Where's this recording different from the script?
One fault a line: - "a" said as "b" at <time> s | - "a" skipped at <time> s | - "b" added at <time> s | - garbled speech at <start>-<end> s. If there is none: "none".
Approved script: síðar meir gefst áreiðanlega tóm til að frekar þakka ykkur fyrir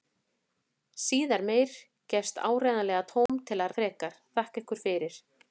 none